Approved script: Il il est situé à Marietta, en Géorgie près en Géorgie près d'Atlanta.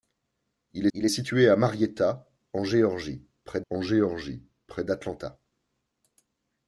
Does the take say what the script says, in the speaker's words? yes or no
yes